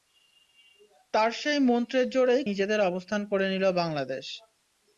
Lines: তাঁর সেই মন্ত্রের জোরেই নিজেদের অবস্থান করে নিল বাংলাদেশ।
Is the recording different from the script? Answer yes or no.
no